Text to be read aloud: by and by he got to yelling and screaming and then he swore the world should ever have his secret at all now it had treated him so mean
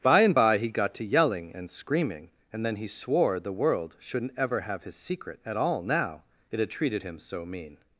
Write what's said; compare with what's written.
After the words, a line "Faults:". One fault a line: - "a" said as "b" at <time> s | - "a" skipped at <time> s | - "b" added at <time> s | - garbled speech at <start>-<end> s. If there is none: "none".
by and by he got to yelling and screaming and then he swore the world shouldn't ever have his secret at all now it had treated him so mean
Faults:
- "should" said as "shouldn't" at 4.0 s